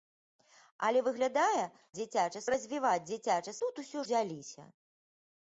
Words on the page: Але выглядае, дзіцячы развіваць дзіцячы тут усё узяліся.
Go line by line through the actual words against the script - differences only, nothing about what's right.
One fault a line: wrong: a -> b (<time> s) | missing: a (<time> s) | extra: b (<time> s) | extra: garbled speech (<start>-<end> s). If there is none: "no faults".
no faults